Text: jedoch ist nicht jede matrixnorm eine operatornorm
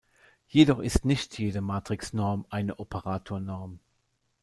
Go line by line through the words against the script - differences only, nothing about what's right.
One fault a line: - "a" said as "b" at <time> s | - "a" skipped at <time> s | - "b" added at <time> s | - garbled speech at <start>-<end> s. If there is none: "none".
none